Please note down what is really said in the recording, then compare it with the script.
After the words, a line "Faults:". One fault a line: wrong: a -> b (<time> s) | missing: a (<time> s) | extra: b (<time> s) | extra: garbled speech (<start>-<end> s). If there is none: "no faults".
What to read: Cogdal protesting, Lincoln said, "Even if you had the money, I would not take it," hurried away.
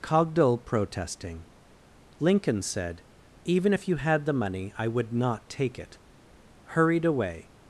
Cogdal protesting, Lincoln said, "Even if you had the money, I would not take it," hurried away.
Faults:
no faults